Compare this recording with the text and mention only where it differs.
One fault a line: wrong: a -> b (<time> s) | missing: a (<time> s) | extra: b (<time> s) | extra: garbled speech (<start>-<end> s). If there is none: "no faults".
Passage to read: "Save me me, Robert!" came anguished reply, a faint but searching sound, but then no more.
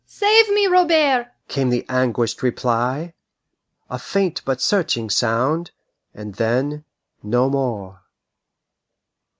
missing: me (0.7 s)
extra: the (1.7 s)
wrong: but -> and (6.1 s)